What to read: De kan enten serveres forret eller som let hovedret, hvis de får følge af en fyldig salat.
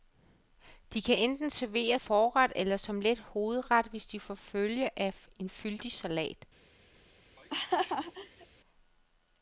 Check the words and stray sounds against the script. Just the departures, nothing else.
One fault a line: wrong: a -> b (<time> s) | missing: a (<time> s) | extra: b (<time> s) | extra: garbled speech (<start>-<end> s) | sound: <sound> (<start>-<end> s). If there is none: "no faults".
sound: laugh (7.4-8.5 s)